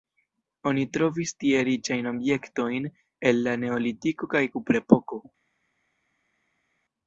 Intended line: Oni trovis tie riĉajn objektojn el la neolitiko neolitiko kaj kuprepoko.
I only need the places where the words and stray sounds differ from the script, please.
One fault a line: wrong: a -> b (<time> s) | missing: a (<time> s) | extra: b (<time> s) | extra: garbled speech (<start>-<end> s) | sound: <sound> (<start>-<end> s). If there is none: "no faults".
missing: neolitiko (4.3 s)